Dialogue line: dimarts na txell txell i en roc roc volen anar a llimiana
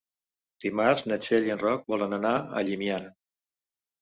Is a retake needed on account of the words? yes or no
yes